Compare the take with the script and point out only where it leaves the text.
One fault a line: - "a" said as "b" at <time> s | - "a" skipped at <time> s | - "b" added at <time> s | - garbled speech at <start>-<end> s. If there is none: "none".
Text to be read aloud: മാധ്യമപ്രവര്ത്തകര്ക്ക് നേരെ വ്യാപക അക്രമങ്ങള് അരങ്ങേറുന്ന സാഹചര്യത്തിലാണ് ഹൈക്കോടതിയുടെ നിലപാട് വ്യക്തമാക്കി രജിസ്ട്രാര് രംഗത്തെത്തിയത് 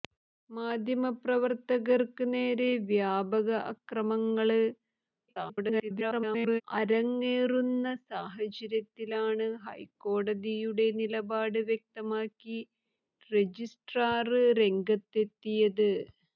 - garbled speech at 5.3-6.6 s